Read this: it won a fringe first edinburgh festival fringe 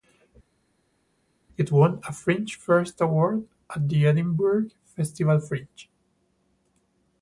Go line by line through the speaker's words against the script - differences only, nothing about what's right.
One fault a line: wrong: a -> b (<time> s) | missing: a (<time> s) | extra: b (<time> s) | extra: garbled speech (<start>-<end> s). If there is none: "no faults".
extra: award at the (3.0 s)